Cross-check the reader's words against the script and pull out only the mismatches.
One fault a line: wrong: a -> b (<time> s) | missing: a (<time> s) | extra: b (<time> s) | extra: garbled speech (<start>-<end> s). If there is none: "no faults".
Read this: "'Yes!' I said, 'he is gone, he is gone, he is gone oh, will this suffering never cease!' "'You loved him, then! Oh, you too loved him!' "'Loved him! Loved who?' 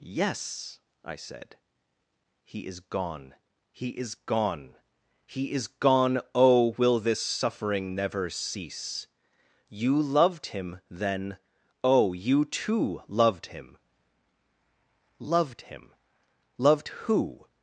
no faults